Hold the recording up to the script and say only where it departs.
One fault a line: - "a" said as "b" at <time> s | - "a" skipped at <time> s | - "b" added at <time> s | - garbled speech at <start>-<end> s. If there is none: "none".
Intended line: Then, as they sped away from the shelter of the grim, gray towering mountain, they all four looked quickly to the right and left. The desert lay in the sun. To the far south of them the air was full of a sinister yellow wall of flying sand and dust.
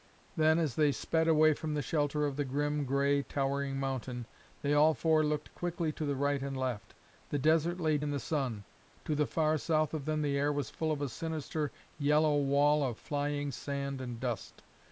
none